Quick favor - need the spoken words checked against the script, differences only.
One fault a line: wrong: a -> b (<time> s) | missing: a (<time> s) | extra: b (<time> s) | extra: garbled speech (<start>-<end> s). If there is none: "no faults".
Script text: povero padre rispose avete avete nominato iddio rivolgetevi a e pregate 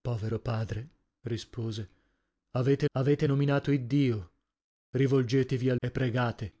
no faults